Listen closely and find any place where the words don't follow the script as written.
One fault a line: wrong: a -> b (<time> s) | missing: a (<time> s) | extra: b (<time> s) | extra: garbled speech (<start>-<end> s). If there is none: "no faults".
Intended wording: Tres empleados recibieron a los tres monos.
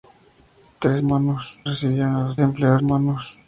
wrong: empleados -> monos (1.0 s)
wrong: tres -> empleados (2.4 s)